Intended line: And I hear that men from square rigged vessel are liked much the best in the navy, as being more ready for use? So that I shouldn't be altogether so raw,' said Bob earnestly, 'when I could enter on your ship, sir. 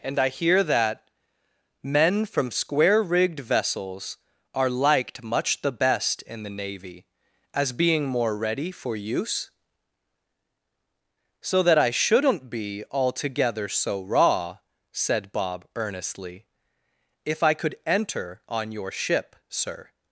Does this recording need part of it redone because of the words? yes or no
yes